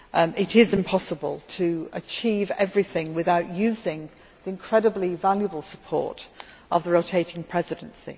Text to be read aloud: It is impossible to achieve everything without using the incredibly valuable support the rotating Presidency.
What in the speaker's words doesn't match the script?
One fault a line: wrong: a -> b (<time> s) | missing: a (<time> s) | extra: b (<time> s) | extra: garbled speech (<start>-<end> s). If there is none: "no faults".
extra: of (6.7 s)